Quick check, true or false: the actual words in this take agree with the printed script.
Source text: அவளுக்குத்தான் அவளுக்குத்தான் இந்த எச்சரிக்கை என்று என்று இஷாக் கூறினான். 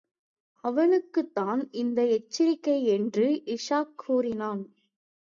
false